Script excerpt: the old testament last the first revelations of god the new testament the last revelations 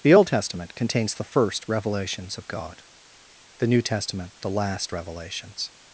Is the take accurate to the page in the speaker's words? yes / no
no